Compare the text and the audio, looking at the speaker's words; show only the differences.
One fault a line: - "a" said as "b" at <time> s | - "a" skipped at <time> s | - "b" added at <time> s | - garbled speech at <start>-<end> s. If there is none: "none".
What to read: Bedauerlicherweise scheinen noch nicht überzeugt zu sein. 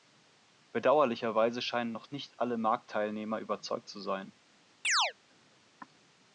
- "alle Marktteilnehmer" added at 2.4 s